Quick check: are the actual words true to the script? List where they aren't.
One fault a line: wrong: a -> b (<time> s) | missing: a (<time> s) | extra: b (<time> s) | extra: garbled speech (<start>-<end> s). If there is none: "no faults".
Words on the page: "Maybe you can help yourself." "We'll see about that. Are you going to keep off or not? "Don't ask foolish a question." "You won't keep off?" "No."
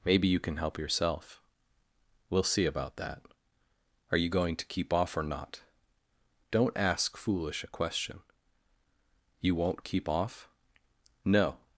no faults